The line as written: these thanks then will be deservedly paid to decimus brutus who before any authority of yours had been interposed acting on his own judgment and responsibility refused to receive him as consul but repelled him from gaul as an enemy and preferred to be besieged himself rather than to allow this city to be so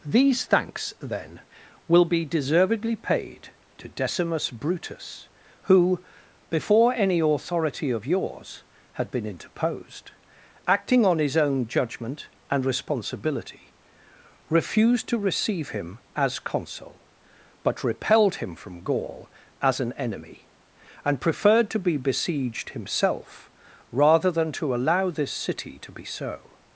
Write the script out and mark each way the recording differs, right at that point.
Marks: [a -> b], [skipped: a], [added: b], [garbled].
these thanks then will be deservedly paid to decimus brutus who before any authority of yours had been interposed acting on his own judgment and responsibility refused to receive him as consul but repelled him from gaul as an enemy and preferred to be besieged himself rather than to allow this city to be so